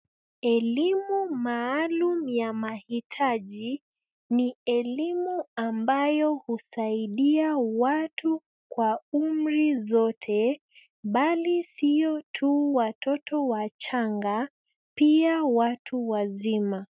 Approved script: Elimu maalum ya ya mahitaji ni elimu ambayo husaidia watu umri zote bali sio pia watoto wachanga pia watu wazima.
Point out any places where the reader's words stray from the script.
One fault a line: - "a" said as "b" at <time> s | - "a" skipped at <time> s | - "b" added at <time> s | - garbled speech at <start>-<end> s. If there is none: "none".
- "ya" skipped at 2.5 s
- "kwa" added at 8.7 s
- "pia" said as "tu" at 12.3 s